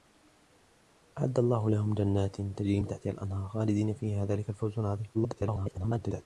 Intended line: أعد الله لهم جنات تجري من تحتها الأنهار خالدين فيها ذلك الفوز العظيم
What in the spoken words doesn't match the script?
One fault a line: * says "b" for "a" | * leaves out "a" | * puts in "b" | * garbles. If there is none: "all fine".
* garbles